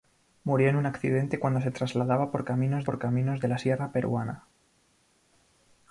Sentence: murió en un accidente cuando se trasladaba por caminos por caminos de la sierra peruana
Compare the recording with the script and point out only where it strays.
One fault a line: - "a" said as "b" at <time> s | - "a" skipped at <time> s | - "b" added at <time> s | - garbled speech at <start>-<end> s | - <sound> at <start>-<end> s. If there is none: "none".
none